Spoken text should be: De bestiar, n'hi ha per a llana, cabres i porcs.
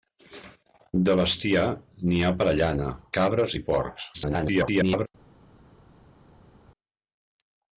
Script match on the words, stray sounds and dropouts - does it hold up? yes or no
no